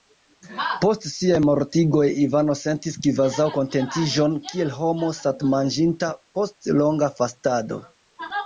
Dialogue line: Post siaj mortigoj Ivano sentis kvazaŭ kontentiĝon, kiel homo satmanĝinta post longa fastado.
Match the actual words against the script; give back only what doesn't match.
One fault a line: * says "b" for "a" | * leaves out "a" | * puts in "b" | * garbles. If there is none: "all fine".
all fine